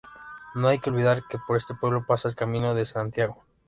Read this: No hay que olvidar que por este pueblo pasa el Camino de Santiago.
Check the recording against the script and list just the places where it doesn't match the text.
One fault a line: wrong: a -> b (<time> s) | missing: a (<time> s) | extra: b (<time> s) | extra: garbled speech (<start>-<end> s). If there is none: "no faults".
no faults